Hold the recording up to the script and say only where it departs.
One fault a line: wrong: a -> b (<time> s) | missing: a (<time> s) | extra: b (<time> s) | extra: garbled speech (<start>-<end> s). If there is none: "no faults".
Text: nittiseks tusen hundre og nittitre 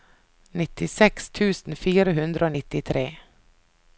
extra: fire (1.8 s)